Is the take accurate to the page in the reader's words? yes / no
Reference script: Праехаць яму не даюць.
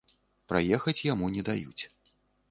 yes